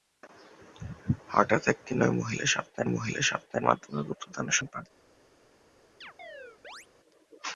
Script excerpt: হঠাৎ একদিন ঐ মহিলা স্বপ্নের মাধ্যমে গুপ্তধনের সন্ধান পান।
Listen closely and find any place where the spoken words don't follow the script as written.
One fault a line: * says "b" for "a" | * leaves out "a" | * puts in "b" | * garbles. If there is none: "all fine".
* puts in "মহিলা স্বপ্নের"
* leaves out "সন্ধান"